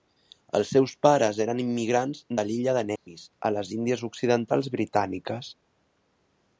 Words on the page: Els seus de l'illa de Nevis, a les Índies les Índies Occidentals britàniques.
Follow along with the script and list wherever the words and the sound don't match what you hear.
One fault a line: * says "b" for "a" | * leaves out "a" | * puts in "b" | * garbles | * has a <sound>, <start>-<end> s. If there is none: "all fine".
* puts in "pares eren immigrants"
* has a dropout, 3.0-3.1 s
* leaves out "les Índies"